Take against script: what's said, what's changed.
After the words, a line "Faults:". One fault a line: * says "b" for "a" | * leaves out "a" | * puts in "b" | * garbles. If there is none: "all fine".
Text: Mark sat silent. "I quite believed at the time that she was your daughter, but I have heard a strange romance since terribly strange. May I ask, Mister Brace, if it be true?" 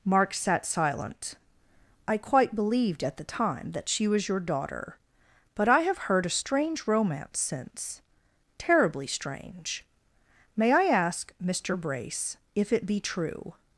Mark sat silent. "I quite believed at the time that she was your daughter, but I have heard a strange romance since terribly strange. May I ask, Mister Brace, if it be true?"
Faults:
all fine